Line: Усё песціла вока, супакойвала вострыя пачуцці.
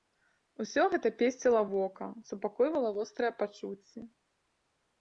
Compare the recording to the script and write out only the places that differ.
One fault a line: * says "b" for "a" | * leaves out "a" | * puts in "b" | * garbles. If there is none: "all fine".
* puts in "гэта"